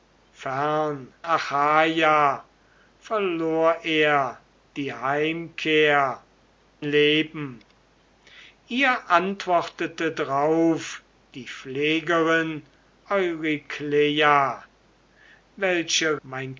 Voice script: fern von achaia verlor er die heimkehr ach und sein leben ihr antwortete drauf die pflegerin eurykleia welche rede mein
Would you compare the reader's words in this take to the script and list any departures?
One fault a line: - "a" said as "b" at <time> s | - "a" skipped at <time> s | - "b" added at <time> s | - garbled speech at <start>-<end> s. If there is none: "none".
- "von" skipped at 1.1 s
- "ach und sein" skipped at 6.2 s
- "rede" skipped at 16.2 s